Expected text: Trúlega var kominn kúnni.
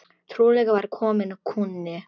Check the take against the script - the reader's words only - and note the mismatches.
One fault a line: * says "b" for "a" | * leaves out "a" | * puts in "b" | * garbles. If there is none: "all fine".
all fine